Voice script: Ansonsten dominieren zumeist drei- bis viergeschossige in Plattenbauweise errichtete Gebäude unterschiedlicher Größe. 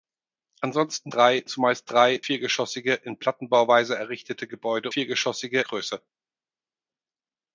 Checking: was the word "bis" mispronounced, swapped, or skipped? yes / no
yes